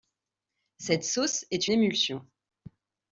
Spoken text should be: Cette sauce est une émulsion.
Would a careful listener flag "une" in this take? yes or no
yes